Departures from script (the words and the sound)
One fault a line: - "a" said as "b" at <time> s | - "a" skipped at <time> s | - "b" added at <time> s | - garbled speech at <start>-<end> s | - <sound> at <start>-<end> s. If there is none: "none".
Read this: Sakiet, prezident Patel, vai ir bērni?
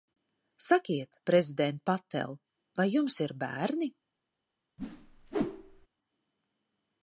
- "jums" added at 3.0 s
- whoosh at 4.8-5.9 s